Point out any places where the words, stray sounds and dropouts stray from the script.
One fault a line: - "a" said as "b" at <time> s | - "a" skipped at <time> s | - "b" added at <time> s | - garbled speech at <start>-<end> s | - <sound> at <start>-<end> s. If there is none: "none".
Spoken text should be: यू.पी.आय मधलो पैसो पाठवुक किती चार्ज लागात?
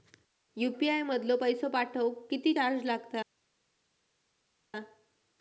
none